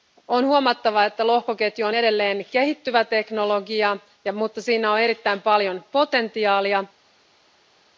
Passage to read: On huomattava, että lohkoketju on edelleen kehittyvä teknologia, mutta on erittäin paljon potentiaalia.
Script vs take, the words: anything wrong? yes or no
yes